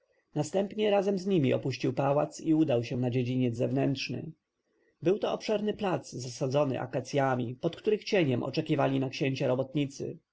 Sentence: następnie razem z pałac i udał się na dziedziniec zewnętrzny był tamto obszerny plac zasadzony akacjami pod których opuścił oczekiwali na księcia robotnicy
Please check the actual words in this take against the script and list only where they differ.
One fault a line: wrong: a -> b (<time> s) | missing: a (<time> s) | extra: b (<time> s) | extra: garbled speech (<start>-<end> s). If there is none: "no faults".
extra: nimi opuścił (1.2 s)
wrong: tamto -> to (5.2 s)
wrong: opuścił -> cieniem (8.0 s)